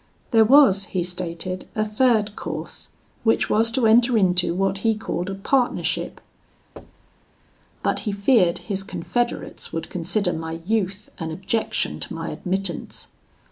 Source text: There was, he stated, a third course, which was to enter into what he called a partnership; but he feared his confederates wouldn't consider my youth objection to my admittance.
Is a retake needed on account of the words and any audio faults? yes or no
yes